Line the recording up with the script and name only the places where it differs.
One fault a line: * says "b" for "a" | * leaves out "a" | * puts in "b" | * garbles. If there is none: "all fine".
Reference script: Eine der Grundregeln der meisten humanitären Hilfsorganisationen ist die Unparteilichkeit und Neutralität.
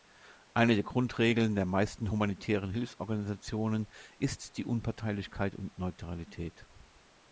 all fine